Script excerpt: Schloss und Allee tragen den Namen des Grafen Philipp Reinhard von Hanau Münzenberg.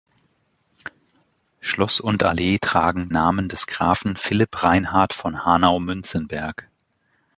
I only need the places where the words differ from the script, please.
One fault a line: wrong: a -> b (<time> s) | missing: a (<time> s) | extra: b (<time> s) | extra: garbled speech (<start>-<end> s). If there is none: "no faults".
missing: den (3.1 s)